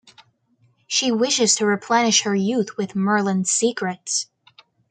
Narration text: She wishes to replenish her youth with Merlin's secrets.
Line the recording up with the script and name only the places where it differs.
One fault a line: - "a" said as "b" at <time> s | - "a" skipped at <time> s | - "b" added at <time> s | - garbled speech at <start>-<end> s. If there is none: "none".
none